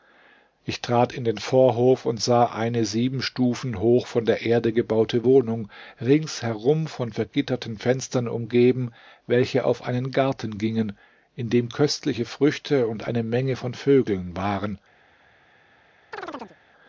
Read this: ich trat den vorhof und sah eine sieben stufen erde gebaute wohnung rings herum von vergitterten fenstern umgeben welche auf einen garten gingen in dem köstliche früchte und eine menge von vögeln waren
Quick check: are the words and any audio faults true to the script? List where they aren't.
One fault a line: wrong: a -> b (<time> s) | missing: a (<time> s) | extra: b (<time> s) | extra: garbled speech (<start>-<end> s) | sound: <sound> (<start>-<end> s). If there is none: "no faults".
extra: in (1.1 s)
extra: hoch von der (3.8 s)
sound: chirp (16.1-16.6 s)